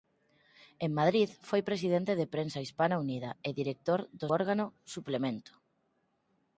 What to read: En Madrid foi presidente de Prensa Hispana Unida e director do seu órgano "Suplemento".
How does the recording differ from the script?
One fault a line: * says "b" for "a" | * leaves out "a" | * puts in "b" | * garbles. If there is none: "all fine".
* leaves out "seu"